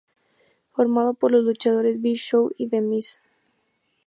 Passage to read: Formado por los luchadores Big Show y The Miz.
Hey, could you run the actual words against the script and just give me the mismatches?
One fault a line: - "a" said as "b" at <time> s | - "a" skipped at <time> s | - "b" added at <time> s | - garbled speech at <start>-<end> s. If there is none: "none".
none